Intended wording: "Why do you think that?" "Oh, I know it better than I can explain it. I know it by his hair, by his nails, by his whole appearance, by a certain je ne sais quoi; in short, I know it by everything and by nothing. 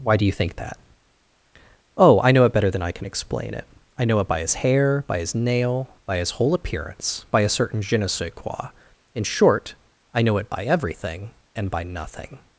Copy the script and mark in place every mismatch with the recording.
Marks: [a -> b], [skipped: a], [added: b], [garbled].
"Why do you think that?" "Oh, I know it better than I can explain it. I know it by his hair, by his [nails, -> nail] by his whole appearance, by a certain je ne sais quoi; in short, I know it by everything and by nothing.